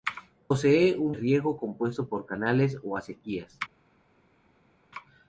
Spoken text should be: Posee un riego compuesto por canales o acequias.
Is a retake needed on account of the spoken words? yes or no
no